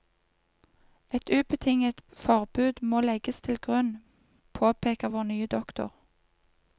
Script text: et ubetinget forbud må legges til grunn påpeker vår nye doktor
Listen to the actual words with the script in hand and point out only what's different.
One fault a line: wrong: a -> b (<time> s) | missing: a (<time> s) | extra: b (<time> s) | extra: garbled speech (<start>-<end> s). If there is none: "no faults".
no faults